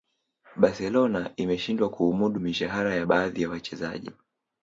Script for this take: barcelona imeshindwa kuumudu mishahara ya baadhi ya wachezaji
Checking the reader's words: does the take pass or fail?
pass